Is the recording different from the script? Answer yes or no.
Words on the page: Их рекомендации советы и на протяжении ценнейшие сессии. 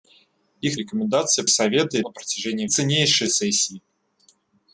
no